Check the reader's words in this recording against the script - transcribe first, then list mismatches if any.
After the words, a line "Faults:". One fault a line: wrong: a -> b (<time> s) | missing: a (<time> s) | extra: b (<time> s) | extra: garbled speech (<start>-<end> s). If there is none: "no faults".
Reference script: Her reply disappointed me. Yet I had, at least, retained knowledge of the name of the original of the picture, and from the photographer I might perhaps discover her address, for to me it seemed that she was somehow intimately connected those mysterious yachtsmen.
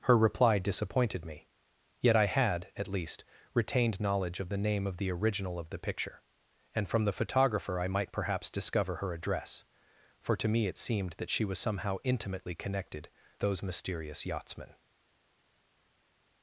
Her reply disappointed me. Yet I had, at least, retained knowledge of the name of the original of the picture, and from the photographer I might perhaps discover her address, for to me it seemed that she was somehow intimately connected those mysterious yachtsmen.
Faults:
no faults